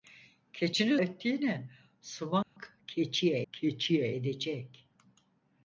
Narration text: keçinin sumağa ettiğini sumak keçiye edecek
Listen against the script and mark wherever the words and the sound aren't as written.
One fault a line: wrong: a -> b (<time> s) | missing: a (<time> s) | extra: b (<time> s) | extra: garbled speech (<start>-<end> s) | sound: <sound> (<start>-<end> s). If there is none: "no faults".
missing: sumağa (1.0 s)
sound: dropout (2.4-2.6 s)
extra: keçiye (3.5 s)